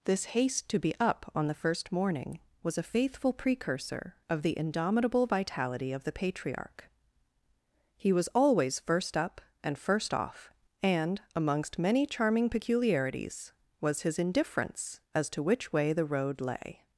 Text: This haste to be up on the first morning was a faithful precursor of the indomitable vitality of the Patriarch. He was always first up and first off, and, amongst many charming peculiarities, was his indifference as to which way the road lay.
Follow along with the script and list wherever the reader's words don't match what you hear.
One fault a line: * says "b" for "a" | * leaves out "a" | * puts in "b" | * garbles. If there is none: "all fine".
all fine